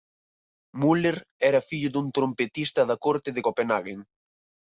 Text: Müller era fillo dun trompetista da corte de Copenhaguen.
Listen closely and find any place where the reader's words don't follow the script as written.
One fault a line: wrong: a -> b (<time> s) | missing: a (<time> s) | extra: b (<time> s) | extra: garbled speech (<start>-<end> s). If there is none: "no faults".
no faults